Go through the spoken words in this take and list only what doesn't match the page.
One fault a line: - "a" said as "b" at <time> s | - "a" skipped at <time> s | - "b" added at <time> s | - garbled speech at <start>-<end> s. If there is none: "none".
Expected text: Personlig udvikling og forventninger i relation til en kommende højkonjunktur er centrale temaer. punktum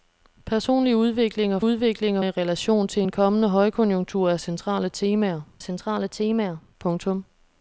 - "forventninger" said as "udvikling" at 1.6 s
- "centrale temaer" added at 5.6 s